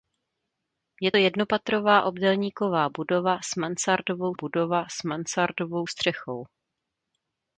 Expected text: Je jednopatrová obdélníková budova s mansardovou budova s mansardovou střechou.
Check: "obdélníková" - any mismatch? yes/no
no